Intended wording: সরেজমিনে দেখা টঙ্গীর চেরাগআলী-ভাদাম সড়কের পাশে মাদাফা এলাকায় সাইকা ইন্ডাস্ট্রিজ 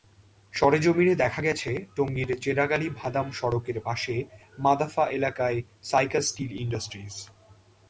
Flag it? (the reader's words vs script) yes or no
yes